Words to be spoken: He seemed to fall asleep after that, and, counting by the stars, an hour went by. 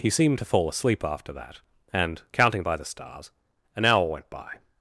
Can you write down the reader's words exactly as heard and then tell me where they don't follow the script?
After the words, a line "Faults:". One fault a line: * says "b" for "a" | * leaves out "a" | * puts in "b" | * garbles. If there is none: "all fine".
He seemed to fall asleep after that, and, counting by the stars, an hour went by.
Faults:
all fine